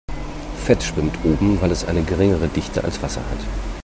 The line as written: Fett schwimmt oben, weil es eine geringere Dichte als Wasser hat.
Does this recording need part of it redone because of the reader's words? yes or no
no